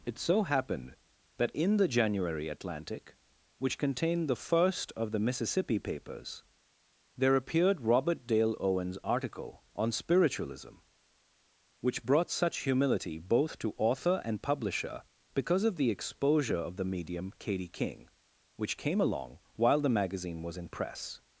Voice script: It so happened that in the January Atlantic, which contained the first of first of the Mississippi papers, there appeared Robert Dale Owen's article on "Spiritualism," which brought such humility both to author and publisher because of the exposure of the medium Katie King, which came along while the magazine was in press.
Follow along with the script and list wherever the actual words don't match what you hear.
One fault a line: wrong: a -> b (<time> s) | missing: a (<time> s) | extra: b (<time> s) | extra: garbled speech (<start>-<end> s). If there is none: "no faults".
missing: first of (5.1 s)